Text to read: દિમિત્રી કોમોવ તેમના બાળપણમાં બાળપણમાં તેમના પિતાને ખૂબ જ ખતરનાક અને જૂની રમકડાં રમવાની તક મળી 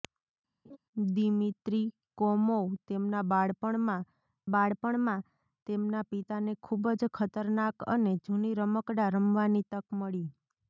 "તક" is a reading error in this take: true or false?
false